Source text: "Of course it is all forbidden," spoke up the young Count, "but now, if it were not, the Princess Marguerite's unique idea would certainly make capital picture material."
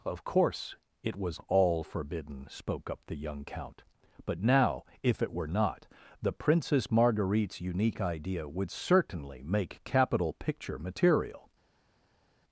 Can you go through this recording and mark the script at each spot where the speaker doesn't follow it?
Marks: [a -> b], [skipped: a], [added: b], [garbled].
"Of course it [is -> was] all forbidden," spoke up the young Count, "but now, if it were not, the Princess Marguerite's unique idea would certainly make capital picture material."